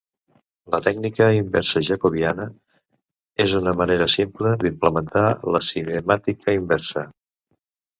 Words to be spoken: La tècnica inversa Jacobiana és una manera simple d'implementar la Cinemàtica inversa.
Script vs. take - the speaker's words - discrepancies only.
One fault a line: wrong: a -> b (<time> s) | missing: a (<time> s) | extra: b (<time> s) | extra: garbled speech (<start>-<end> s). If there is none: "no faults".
no faults